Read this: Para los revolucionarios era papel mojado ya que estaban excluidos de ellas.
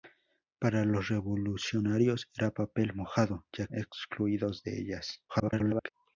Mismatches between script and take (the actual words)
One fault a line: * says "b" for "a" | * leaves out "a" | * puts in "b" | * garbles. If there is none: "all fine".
* leaves out "que estaban"
* garbles